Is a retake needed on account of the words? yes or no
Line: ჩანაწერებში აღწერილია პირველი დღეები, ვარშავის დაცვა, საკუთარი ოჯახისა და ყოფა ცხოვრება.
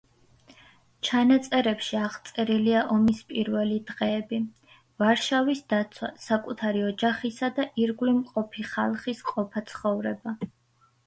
yes